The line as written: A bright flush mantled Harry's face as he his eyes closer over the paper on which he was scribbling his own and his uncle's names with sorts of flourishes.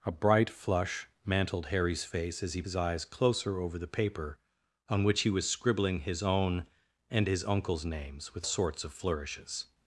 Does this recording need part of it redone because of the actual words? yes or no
no